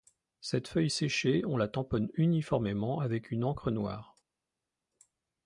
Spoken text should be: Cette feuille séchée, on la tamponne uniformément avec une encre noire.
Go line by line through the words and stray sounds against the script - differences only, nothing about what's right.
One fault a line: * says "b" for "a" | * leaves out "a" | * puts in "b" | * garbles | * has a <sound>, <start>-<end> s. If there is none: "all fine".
all fine